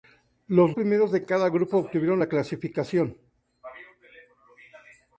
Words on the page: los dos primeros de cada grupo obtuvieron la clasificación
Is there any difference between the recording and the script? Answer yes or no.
yes